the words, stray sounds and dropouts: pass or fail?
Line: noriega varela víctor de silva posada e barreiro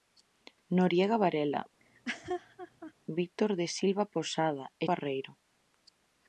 fail